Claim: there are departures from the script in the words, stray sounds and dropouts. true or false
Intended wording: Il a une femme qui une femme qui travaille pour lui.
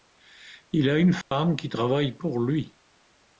true